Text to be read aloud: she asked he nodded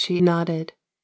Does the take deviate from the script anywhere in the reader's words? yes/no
yes